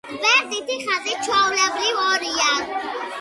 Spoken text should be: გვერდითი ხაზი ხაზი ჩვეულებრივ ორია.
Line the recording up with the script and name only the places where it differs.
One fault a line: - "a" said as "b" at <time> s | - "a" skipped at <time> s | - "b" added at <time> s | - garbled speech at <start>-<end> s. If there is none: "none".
- "ხაზი" skipped at 1.1 s